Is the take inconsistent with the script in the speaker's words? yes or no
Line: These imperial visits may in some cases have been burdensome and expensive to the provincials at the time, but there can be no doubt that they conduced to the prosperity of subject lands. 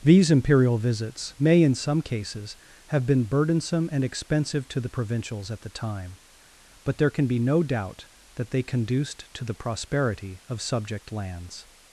no